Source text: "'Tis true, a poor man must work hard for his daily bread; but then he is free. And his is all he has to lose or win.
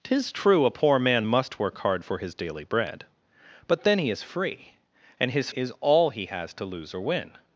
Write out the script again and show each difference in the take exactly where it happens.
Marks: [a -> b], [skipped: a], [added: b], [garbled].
"'Tis true, a poor man must work hard for his daily bread; but then he is free. And his is all he has to lose or win.